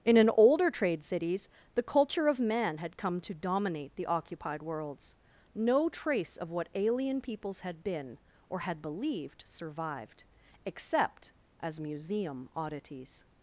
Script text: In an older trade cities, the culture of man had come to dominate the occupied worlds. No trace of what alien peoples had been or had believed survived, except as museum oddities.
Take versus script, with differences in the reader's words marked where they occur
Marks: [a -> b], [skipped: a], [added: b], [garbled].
In an older trade cities, the culture of man had come to dominate the occupied worlds. No trace of what alien peoples had been or had believed survived, except as museum oddities.